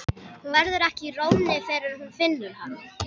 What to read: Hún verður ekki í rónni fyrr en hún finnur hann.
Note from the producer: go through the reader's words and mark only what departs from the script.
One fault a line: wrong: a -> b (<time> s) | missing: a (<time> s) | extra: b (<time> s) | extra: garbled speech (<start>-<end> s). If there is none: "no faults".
no faults